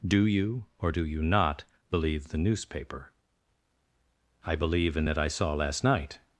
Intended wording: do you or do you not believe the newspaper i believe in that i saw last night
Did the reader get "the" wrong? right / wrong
right